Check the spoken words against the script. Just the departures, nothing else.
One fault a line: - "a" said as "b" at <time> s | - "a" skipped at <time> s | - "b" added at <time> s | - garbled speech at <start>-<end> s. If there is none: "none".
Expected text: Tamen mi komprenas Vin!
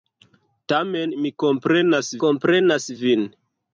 - "komprenas" added at 2.3 s